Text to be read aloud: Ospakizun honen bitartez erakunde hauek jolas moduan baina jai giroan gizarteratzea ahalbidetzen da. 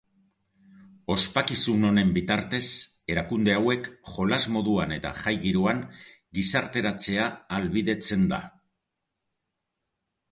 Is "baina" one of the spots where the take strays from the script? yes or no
yes